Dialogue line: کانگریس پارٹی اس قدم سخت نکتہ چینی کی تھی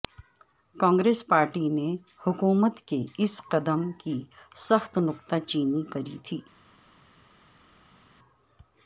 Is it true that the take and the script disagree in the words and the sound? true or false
true